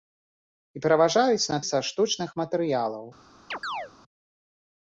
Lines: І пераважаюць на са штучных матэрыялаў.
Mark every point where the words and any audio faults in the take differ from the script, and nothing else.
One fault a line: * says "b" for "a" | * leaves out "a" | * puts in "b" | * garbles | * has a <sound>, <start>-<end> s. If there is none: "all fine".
* has a chirp, 3.5-3.9 s